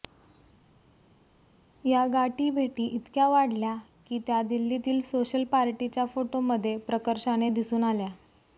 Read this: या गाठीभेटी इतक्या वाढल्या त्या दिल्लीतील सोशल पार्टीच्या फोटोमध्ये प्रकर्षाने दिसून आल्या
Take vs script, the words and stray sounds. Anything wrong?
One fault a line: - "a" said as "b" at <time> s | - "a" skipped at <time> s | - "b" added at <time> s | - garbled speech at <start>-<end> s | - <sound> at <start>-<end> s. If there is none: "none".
- "की" added at 4.1 s